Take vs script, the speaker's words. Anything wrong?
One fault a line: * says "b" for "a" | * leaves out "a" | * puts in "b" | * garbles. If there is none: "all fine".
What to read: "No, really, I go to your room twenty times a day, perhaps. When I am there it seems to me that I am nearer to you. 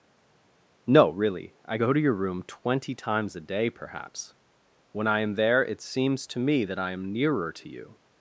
all fine